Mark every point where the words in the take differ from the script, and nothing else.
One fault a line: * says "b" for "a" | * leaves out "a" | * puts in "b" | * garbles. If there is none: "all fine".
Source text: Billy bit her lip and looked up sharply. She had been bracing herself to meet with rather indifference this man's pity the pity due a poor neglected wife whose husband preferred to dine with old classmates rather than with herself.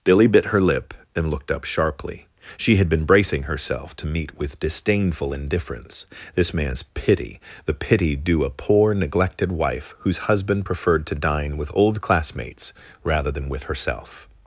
* says "disdainful" for "rather"